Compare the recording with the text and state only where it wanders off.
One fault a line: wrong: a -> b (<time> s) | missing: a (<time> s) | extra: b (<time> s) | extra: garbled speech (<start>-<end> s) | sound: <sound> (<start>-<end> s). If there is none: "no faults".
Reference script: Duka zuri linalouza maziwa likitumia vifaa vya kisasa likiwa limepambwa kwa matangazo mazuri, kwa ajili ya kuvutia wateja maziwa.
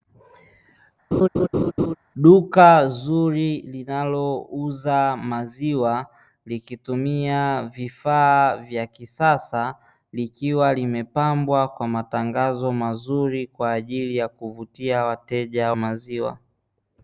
sound: laugh (1.1-1.9 s)